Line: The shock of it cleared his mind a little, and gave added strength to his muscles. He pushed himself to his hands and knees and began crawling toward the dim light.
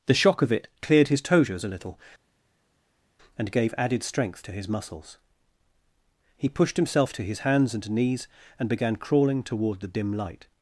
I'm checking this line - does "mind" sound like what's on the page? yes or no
no